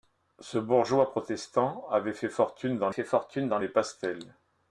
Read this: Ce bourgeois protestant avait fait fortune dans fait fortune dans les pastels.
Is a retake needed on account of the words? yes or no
no